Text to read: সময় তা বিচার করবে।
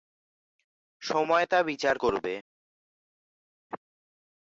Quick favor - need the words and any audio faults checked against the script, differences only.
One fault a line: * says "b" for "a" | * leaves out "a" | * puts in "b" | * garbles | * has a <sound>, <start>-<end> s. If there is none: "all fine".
all fine